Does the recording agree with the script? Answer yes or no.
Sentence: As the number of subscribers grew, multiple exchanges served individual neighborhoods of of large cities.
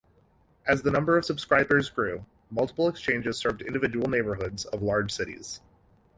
no